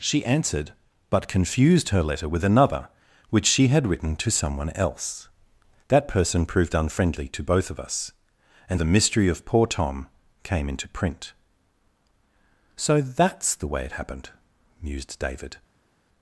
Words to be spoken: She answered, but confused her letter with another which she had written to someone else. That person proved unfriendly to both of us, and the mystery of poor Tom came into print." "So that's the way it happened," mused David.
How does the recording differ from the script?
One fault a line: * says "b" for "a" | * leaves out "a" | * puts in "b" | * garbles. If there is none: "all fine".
all fine